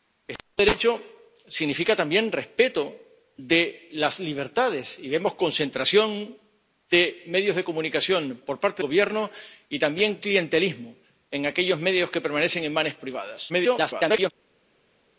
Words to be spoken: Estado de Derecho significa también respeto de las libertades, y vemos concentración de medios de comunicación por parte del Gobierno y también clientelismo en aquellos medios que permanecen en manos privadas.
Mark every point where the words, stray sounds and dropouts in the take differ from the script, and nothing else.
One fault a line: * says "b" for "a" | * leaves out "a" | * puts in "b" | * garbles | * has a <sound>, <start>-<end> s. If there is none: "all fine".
* leaves out "del"
* garbles